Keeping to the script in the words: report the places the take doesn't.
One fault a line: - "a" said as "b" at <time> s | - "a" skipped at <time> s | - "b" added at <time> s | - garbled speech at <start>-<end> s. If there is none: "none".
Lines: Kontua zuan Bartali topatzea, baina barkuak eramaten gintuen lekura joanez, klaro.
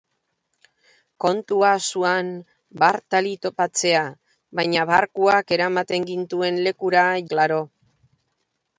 - "joanez" skipped at 7.0 s